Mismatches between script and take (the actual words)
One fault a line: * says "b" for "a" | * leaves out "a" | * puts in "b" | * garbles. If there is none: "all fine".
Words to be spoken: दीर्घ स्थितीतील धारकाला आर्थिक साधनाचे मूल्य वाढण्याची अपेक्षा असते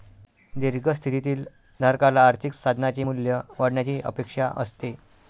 all fine